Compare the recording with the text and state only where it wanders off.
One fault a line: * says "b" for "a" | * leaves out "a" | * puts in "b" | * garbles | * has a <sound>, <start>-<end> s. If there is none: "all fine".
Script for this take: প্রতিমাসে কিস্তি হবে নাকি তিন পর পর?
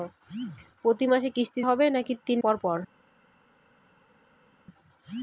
all fine